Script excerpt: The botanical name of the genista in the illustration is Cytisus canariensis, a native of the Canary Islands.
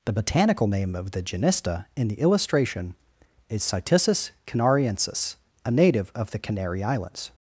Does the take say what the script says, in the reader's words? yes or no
yes